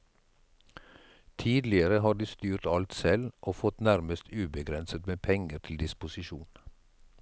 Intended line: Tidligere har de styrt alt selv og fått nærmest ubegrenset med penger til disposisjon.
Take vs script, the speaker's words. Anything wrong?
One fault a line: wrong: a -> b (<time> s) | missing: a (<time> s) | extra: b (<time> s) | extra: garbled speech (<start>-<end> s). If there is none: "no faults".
no faults